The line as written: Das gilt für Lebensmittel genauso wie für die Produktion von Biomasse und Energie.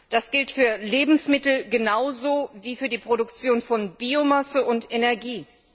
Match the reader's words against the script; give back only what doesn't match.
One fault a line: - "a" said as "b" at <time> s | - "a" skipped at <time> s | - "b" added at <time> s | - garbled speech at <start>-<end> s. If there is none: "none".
none